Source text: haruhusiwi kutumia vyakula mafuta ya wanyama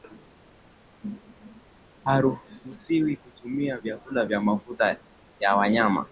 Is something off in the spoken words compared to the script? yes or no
yes